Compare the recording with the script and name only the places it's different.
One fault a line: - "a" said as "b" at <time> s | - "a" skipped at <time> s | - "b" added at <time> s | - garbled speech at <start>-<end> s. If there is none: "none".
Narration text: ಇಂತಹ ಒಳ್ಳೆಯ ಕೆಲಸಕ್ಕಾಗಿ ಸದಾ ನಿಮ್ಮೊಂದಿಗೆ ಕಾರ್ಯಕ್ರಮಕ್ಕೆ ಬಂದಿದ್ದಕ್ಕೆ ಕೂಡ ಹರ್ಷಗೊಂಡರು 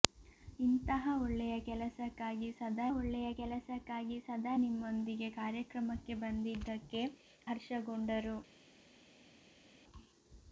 - "ಒಳ್ಳೆಯ ಕೆಲಸಕ್ಕಾಗಿ ಸದಾ" added at 3.0 s
- "ಕೂಡ" skipped at 7.0 s